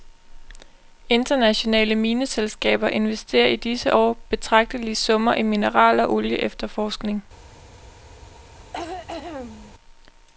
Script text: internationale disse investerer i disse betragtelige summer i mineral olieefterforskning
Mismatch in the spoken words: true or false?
true